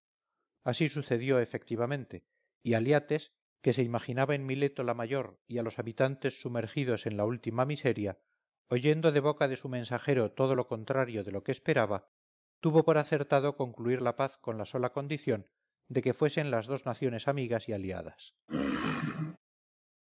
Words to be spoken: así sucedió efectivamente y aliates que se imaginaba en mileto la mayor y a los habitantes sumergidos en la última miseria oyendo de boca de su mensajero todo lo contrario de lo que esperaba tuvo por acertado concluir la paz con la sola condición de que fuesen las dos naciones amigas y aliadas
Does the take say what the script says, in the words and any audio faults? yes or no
no